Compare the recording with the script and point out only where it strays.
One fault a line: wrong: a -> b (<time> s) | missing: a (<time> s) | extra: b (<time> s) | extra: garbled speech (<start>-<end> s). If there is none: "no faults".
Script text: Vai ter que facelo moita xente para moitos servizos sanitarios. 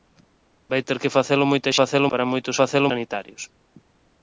wrong: xente -> facelo (1.8 s)
wrong: servizos -> facelo (2.6 s)